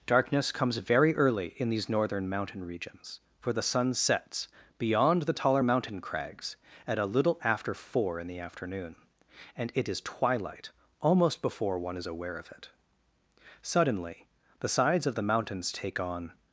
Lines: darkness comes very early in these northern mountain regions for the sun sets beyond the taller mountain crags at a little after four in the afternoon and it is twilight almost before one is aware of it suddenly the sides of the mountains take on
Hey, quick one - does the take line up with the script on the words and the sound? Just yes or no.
yes